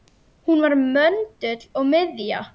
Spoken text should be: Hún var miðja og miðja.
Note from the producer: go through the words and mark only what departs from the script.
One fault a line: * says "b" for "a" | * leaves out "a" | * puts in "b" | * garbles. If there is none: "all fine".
* says "möndull" for "miðja"